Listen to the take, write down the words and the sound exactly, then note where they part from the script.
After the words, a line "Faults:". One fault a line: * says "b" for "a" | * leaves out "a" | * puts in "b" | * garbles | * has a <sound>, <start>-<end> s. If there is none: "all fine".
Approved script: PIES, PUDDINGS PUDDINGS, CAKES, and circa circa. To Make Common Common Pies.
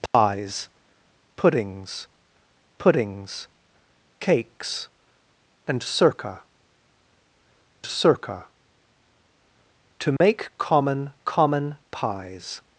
PIES, PUDDINGS PUDDINGS, CAKES, and circa circa. To Make Common Common Pies.
Faults:
* has a dropout, 0.1-0.1 s
* has a dropout, 10.2-10.2 s